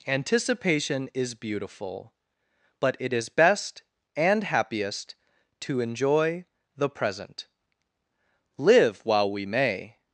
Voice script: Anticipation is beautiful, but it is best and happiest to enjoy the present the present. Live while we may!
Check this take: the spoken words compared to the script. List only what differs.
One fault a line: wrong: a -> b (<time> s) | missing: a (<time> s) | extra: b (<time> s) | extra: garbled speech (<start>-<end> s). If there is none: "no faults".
missing: the present (7.5 s)